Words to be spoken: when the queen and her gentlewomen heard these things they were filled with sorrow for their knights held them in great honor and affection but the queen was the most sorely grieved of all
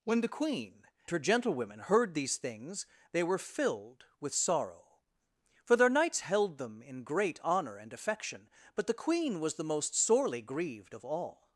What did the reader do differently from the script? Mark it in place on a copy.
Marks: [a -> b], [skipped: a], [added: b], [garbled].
when the queen [skipped: and] her gentlewomen heard these things they were filled with sorrow for their knights held them in great honor and affection but the queen was the most sorely grieved of all